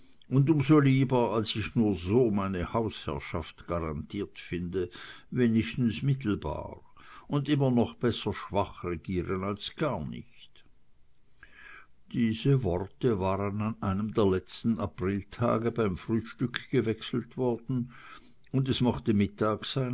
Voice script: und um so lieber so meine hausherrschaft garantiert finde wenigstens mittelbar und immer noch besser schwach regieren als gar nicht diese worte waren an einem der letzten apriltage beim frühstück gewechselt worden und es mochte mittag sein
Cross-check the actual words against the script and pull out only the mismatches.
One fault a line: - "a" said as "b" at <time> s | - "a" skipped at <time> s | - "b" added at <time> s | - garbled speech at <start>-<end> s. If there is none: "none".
- "als ich nur" added at 1.3 s